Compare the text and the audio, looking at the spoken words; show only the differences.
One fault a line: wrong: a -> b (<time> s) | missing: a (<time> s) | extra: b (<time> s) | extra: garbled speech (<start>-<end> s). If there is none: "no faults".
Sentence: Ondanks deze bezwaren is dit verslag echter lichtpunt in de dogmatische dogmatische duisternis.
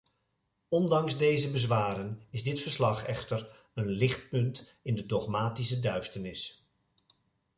extra: een (3.7 s)
missing: dogmatische (5.8 s)